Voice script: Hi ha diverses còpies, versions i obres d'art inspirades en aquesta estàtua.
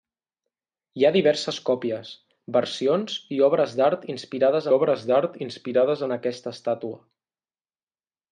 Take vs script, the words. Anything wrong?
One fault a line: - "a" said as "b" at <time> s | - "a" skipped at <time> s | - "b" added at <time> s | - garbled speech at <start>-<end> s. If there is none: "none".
- "obres d'art inspirades" added at 4.8 s